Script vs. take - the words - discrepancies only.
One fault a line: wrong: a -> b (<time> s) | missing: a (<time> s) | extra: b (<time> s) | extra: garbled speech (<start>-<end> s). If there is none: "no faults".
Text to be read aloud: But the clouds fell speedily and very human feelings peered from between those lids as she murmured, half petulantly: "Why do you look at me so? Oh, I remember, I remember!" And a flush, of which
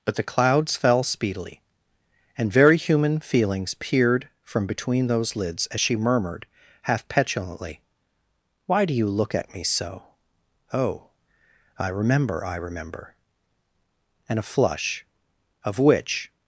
no faults